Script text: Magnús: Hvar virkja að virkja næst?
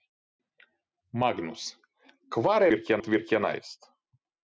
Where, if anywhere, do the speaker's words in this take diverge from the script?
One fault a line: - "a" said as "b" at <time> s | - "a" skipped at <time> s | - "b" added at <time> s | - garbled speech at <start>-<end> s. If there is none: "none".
none